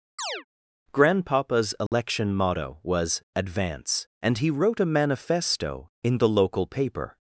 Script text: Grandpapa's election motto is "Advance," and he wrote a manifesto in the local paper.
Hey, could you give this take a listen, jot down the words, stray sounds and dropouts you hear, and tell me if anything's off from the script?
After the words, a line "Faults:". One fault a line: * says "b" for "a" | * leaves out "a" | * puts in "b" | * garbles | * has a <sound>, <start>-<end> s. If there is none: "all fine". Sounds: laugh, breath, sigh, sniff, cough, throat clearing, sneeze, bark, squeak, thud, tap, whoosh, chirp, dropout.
Grandpapa's election motto was "Advance," and he wrote a manifesto in the local paper.
Faults:
* has a chirp, 0.2-0.4 s
* has a dropout, 1.9-1.9 s
* says "was" for "is"